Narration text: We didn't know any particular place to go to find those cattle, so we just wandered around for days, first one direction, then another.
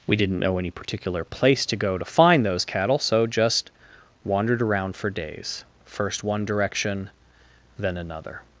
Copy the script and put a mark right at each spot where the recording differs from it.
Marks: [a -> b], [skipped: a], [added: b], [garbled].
We didn't know any particular place to go to find those cattle, so [skipped: we] just wandered around for days, first one direction, then another.